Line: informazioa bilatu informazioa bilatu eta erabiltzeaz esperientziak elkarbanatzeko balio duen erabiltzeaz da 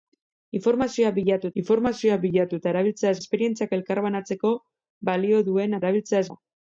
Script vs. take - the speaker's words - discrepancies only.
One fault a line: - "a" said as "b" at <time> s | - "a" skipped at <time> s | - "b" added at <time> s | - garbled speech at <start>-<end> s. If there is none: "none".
none